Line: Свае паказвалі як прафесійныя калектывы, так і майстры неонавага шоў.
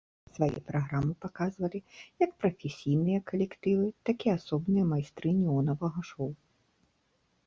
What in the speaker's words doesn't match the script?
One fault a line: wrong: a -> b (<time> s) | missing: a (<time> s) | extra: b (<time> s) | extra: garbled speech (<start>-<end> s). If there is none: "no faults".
extra: праграмы (0.7 s)
extra: асобныя (4.4 s)